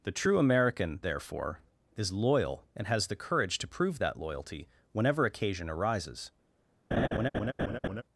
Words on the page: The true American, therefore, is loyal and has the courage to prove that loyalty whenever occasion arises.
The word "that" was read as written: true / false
true